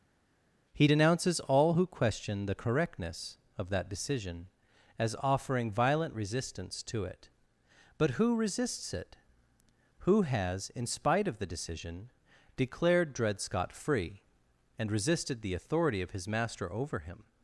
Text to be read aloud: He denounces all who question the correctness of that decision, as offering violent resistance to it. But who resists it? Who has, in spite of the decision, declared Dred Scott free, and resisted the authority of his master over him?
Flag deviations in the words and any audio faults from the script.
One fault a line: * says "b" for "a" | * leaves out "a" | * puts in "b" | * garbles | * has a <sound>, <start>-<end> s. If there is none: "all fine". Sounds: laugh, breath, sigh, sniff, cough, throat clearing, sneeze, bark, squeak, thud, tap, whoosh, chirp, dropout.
all fine